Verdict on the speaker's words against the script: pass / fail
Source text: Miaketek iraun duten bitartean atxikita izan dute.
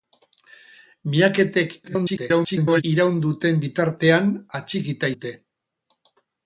fail